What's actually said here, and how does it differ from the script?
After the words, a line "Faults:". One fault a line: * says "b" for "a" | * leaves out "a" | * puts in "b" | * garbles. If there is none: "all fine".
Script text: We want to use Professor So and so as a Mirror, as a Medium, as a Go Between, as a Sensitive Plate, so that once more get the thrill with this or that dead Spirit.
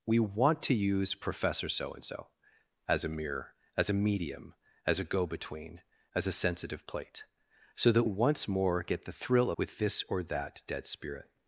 We want to use Professor So and so as a Mirror, as a Medium, as a Go Between, as a Sensitive Plate, so that once more get the thrill with this or that dead Spirit.
Faults:
all fine